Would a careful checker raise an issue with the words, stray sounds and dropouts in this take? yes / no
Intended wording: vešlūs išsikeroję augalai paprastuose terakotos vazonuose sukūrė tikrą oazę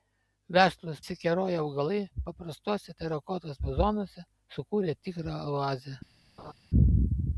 yes